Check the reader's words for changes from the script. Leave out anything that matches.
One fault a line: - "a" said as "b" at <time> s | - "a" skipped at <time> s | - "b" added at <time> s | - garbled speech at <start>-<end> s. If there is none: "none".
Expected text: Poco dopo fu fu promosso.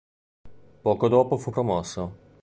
- "fu" skipped at 1.5 s